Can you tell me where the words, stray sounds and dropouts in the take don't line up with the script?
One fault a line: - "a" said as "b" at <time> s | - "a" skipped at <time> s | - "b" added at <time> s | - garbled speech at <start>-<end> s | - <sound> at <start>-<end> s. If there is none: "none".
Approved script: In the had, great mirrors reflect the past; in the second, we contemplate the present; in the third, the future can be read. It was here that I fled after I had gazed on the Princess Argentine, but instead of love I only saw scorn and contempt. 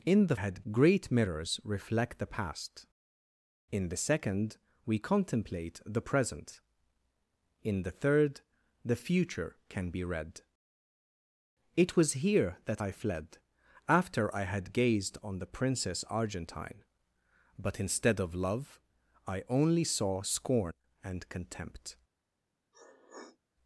- sniff at 22.7-23.4 s